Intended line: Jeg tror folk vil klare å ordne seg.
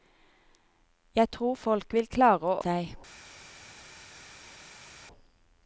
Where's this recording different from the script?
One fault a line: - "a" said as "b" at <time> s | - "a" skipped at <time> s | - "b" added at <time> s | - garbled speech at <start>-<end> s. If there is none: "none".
- "ordne" skipped at 2.6 s